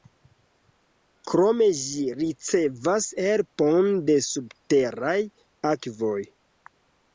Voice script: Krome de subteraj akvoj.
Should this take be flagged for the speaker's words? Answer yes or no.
yes